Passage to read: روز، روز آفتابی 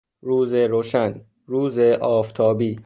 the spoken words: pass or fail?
fail